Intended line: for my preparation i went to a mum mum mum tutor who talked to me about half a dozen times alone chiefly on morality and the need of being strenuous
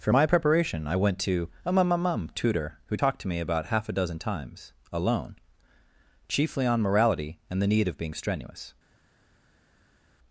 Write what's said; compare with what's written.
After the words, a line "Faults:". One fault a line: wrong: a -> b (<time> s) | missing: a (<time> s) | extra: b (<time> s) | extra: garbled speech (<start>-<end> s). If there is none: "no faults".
for my preparation i went to a mum mum mum tutor who talked to me about half a dozen times alone chiefly on morality and the need of being strenuous
Faults:
no faults